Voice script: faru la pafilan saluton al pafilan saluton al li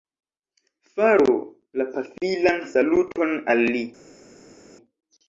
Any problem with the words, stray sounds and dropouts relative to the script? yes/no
yes